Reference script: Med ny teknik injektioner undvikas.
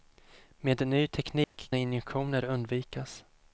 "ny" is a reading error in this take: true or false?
false